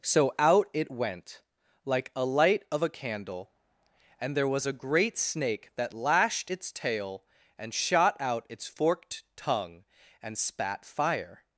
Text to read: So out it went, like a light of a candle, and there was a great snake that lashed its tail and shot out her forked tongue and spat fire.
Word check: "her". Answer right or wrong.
wrong